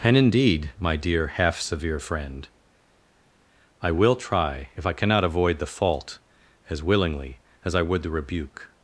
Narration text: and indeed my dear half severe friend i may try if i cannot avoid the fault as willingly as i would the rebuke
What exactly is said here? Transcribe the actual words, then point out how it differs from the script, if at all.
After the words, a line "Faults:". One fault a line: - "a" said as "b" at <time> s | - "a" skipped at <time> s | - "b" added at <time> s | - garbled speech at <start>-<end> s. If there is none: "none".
and indeed my dear half severe friend i will try if i cannot avoid the fault as willingly as i would the rebuke
Faults:
- "may" said as "will" at 3.9 s